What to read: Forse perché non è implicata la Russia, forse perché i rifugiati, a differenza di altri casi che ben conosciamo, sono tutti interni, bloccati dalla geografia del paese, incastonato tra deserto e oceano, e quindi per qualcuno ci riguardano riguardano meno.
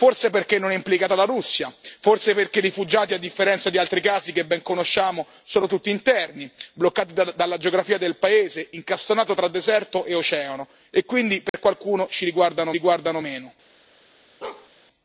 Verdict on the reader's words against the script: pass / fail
pass